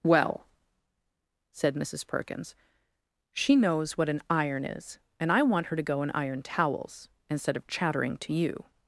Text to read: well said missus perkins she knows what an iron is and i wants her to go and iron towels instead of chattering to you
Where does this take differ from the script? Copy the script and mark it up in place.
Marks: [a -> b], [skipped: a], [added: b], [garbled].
well said missus perkins she knows what an iron is and i [wants -> want] her to go and iron towels instead of chattering to you